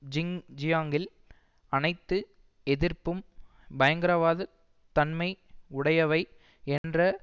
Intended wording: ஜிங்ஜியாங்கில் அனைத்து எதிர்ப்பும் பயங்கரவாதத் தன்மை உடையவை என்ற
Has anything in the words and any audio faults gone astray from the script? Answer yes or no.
yes